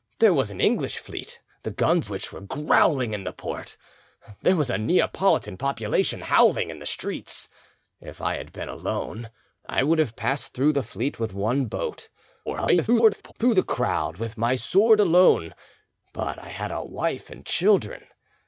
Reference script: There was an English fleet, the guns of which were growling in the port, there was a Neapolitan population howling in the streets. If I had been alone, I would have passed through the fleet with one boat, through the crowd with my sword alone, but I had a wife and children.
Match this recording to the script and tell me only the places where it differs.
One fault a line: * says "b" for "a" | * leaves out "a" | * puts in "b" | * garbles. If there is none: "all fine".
* leaves out "of"
* garbles